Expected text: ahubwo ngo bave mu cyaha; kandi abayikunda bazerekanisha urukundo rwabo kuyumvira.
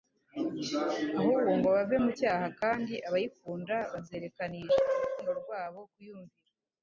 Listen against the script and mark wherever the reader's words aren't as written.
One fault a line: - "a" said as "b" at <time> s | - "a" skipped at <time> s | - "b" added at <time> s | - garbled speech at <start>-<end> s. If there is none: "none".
none